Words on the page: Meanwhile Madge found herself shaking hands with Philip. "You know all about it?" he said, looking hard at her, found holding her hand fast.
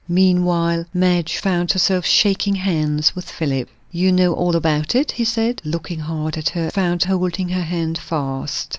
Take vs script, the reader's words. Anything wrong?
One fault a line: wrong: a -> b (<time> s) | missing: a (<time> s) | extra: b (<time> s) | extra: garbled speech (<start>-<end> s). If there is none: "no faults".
no faults